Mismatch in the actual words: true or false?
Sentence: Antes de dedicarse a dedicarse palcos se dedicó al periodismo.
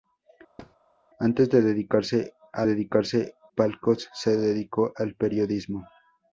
false